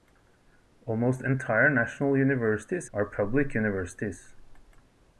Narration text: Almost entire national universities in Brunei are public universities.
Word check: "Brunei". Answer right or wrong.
wrong